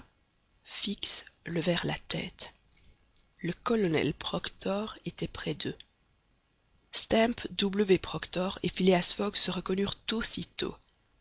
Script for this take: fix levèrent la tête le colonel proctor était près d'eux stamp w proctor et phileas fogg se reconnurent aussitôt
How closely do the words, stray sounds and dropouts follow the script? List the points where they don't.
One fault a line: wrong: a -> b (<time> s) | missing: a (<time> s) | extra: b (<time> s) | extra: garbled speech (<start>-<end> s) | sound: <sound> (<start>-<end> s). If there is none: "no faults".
no faults